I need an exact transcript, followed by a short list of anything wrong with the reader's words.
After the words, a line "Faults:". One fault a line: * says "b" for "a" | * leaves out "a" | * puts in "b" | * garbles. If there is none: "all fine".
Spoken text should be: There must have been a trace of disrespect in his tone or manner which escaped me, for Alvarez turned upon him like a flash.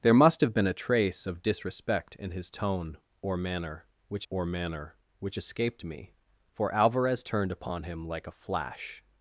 There must have been a trace of disrespect in his tone or manner which or manner which escaped me, for Alvarez turned upon him like a flash.
Faults:
* puts in "or manner which"